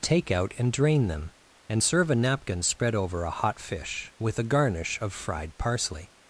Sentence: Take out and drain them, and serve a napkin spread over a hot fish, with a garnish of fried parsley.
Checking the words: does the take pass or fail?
pass